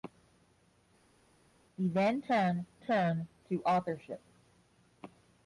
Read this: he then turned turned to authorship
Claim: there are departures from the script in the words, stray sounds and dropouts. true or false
false